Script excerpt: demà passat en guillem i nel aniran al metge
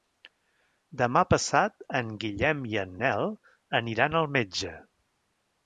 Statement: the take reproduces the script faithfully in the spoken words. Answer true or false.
false